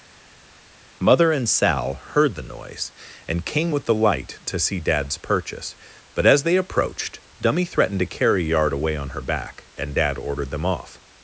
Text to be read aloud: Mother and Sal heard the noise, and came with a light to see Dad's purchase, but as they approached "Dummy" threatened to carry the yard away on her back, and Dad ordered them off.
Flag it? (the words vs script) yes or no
yes